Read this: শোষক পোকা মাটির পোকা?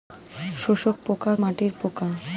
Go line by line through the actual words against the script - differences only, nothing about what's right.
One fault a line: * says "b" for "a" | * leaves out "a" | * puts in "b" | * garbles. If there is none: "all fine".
all fine